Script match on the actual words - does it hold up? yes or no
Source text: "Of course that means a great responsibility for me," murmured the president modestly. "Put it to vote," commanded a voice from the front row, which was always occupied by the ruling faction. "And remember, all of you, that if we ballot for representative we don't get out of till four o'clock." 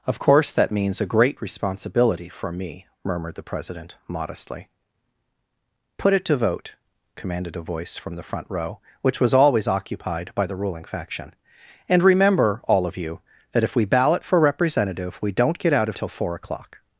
yes